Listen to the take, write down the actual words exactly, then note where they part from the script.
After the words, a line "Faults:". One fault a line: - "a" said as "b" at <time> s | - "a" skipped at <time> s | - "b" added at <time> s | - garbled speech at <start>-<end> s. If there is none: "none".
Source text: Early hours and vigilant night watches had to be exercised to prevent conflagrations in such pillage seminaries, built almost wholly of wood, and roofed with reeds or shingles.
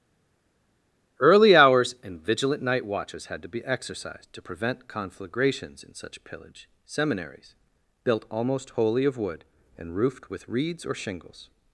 Early hours and vigilant night watches had to be exercised to prevent conflagrations in such pillage seminaries, built almost wholly of wood, and roofed with reeds or shingles.
Faults:
none